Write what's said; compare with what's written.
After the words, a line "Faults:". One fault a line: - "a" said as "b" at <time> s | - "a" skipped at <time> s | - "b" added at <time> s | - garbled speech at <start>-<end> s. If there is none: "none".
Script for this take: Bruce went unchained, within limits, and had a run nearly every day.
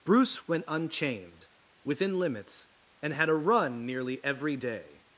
Bruce went unchained, within limits, and had a run nearly every day.
Faults:
none